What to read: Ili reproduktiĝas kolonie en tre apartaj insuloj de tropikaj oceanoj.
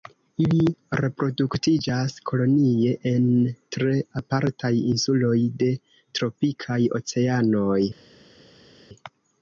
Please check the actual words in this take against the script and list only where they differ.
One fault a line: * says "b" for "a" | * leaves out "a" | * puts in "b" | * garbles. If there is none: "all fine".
all fine